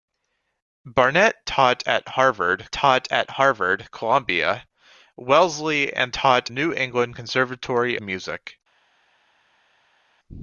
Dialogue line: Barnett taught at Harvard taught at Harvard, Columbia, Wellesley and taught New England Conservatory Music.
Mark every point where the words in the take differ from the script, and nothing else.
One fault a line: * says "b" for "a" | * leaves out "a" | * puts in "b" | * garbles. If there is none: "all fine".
all fine